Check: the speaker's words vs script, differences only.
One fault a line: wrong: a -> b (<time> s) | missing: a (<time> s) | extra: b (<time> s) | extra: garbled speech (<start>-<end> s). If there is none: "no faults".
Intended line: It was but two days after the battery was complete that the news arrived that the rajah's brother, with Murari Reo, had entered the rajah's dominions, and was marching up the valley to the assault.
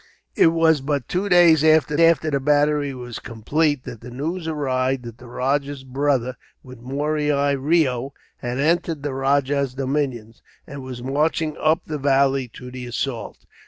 extra: after (2.0 s)